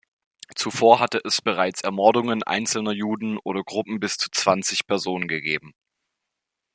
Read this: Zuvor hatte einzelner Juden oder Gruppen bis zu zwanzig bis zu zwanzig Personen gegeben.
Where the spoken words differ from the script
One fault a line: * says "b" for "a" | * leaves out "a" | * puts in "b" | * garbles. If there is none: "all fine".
* puts in "es bereits Ermordungen"
* leaves out "bis zu zwanzig"